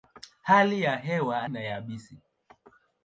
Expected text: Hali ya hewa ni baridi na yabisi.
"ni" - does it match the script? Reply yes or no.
no